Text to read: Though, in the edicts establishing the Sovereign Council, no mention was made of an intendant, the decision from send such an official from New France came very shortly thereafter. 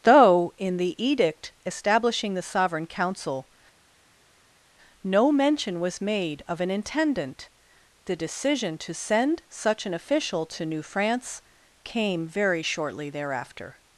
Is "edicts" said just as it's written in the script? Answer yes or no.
no